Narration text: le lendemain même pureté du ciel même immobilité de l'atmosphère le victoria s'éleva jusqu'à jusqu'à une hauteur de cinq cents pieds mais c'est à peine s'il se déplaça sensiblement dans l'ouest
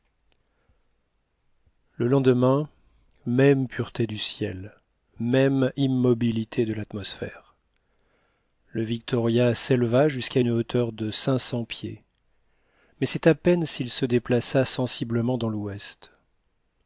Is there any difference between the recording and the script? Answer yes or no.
yes